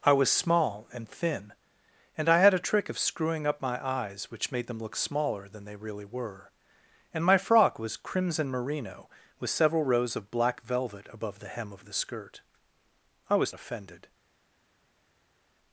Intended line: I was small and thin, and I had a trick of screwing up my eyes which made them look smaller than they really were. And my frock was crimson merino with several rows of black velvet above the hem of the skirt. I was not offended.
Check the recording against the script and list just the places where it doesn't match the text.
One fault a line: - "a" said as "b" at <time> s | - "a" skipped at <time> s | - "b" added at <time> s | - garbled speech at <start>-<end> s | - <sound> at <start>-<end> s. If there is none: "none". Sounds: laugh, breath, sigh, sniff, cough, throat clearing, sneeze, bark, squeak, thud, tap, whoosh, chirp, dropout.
- "not" skipped at 13.5 s